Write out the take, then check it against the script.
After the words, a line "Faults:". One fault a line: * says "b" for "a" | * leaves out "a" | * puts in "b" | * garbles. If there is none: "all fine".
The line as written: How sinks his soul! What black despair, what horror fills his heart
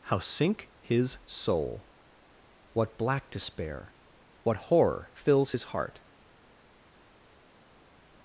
How sink his soul! What black despair, what horror fills his heart
Faults:
* says "sink" for "sinks"